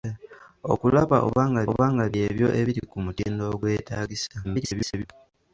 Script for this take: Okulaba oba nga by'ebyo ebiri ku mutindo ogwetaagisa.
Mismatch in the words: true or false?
true